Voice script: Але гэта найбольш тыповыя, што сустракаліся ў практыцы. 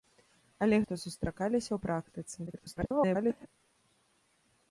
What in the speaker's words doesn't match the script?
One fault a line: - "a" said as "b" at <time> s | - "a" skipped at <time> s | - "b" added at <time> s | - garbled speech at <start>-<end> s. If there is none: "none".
- "гэта найбольш тыповыя" skipped at 0.8 s
- garbled speech at 2.5-3.5 s